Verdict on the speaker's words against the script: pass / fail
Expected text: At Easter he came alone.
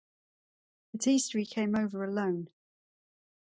fail